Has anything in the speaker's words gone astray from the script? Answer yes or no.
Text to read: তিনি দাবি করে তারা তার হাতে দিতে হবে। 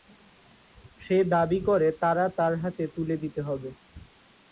yes